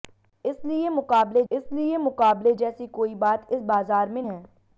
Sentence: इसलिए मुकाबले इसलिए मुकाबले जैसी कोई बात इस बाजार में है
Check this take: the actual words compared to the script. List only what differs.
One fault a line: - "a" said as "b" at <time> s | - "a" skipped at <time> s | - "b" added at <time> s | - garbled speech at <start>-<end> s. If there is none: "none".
none